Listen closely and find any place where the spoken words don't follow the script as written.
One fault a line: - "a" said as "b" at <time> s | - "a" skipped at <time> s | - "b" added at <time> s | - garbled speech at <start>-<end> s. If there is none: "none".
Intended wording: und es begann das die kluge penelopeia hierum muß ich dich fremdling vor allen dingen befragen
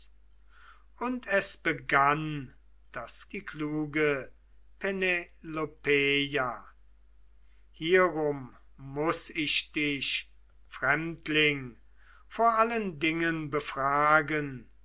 none